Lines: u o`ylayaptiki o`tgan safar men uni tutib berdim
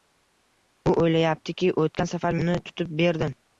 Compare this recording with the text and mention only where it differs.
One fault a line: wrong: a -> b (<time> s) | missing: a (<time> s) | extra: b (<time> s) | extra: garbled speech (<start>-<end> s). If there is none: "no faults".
missing: men (2.4 s)